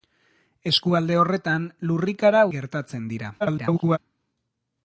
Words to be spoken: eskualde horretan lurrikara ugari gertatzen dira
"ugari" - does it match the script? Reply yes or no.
no